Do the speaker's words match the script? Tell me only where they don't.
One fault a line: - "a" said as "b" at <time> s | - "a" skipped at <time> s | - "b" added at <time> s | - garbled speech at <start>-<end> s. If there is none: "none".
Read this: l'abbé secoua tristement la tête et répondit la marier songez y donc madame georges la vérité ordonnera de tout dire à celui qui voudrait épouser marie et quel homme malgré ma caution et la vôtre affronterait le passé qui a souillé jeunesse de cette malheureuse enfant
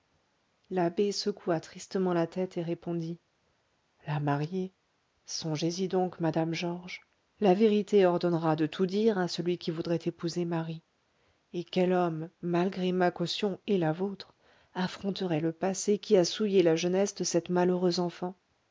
- "la" added at 16.6 s